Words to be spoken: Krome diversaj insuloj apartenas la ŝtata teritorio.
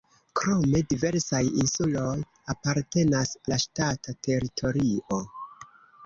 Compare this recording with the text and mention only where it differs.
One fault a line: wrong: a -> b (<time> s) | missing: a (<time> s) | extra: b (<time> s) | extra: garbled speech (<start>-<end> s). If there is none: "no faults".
no faults